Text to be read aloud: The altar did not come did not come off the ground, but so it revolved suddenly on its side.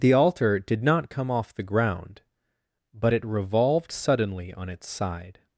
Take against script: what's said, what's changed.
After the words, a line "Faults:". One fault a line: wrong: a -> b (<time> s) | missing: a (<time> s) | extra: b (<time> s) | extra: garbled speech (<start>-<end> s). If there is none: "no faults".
The altar did not come off the ground, but it revolved suddenly on its side.
Faults:
missing: did not come (1.3 s)
missing: so (3.1 s)